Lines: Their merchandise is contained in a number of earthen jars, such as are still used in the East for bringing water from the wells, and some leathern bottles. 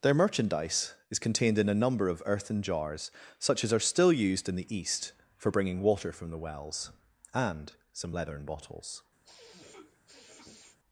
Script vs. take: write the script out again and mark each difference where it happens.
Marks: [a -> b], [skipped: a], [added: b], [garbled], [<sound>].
Their merchandise is contained in a number of earthen jars, such as are still used in the East for bringing water from the wells, and some leathern bottles. [sniff]